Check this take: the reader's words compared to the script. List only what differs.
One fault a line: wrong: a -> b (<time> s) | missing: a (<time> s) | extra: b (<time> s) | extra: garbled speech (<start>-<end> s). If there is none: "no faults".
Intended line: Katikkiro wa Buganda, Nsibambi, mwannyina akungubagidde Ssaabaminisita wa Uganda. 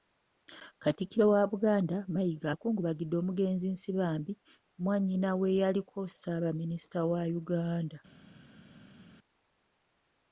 extra: Mayiga akungubagidde omugenzi (2.1 s)
wrong: akungubagidde -> w'eyaliko (5.4 s)